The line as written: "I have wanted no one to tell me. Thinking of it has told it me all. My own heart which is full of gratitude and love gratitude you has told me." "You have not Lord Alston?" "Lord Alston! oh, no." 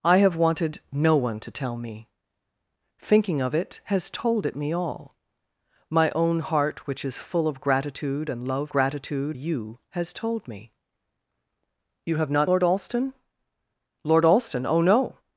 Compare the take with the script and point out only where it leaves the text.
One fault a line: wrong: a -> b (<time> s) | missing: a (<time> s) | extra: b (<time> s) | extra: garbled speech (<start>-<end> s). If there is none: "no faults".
no faults